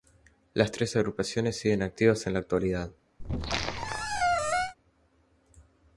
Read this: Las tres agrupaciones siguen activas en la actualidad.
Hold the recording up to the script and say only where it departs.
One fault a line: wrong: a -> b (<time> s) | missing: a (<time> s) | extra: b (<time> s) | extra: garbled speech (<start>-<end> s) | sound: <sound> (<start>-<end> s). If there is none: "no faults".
sound: squeak (3.2-4.7 s)